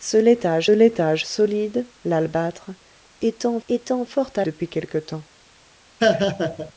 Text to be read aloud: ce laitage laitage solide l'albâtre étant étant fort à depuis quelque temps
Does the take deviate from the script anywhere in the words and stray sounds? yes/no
yes